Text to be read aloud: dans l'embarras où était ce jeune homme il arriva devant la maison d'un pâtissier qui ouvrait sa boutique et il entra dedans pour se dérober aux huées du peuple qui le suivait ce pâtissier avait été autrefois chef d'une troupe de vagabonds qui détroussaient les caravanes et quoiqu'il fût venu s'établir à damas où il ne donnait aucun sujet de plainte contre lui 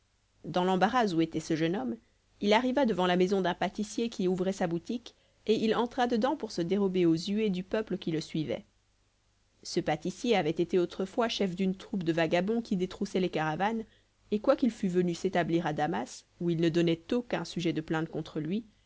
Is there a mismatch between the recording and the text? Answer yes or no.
no